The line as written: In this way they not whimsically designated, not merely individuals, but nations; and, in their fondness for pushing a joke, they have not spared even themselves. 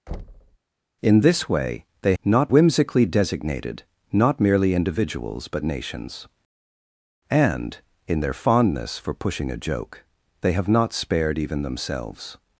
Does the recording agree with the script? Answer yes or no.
yes